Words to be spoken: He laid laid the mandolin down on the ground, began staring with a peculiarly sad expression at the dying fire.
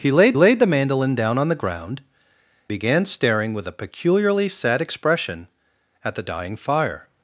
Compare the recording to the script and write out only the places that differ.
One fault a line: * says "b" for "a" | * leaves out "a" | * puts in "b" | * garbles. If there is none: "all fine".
all fine